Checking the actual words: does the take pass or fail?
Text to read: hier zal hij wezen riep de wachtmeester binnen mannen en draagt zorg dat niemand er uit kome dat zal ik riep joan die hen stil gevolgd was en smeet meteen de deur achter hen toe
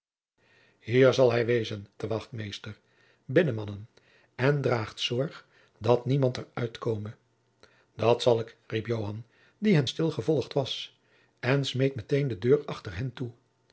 fail